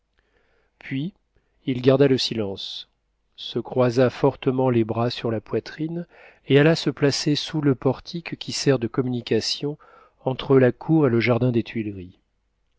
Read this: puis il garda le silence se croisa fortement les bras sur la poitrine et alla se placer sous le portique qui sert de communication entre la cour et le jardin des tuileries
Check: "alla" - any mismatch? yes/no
no